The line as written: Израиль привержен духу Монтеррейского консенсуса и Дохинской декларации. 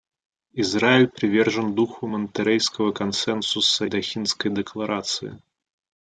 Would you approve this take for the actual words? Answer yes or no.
no